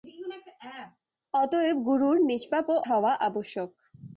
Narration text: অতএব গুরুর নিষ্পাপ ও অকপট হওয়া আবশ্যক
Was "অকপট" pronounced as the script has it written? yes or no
no